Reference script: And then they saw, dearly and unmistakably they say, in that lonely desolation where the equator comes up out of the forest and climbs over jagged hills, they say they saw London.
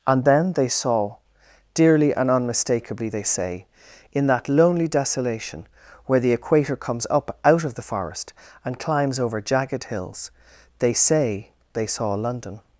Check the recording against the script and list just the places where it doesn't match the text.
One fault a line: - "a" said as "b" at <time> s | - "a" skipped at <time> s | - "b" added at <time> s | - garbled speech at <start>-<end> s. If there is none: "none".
none